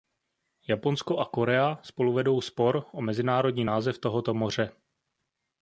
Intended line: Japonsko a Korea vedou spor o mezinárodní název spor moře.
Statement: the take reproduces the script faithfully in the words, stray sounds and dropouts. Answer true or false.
false